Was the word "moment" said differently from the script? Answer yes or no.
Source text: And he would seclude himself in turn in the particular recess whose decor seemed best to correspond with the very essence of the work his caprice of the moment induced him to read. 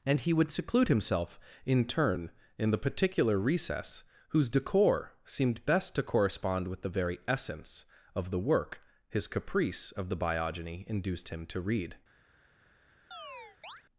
yes